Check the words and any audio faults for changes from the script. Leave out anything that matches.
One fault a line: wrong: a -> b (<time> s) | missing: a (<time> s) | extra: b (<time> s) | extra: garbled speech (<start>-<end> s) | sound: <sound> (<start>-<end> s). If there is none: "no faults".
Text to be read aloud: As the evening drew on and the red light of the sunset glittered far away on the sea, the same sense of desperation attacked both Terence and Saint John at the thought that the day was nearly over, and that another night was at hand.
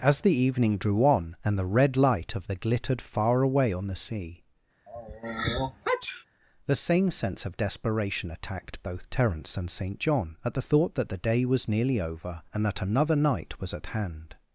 missing: sunset (2.5 s)
sound: sneeze (4.9-6.3 s)